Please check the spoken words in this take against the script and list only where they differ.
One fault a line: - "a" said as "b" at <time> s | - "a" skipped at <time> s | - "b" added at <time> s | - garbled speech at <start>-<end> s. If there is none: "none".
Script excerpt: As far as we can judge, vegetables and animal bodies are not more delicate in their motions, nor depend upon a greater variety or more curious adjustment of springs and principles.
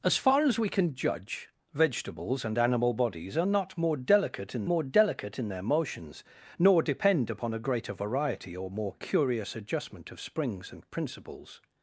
- "more delicate in" added at 4.6 s